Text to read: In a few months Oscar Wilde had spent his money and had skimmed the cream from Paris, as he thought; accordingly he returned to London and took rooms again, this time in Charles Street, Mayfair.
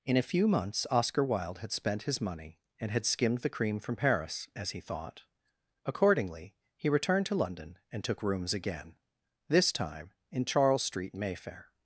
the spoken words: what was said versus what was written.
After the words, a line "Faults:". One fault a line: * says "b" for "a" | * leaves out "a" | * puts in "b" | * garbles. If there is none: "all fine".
In a few months Oscar Wilde had spent his money and had skimmed the cream from Paris, as he thought; accordingly he returned to London and took rooms again, this time in Charles Street, Mayfair.
Faults:
all fine